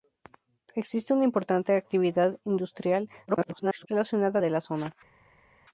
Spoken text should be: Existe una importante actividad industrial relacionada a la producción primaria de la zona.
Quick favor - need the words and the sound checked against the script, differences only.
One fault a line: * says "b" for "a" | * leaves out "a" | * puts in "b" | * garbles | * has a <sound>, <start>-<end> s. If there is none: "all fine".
* garbles
* leaves out "la producción primaria"